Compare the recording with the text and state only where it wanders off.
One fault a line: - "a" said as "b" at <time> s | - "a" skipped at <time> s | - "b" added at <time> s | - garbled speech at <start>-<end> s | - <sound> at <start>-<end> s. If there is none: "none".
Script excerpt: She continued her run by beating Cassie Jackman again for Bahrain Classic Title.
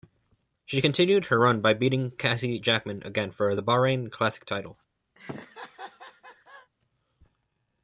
- "the" added at 3.5 s
- laugh at 5.2-6.7 s